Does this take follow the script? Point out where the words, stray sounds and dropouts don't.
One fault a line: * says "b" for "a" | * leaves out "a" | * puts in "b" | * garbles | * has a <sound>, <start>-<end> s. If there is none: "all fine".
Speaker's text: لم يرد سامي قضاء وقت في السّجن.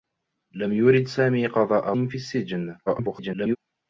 * leaves out "وقت"
* garbles